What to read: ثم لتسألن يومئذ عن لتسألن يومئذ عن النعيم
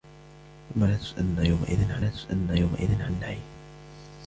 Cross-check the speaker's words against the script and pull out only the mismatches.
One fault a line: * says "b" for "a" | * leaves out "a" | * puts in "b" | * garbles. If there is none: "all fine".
all fine